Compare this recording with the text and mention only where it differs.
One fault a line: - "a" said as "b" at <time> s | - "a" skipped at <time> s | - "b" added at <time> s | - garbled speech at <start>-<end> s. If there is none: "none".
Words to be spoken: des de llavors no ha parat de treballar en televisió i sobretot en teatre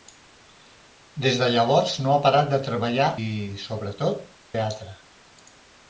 - "en televisió" skipped at 3.1 s
- "en" skipped at 4.3 s